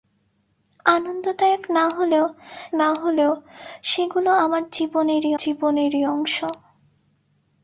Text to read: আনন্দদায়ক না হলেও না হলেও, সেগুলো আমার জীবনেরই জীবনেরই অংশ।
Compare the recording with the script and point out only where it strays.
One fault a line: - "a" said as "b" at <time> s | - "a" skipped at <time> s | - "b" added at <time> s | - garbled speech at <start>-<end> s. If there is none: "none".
none